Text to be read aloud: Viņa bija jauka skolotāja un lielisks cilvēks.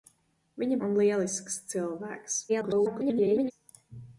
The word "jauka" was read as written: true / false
false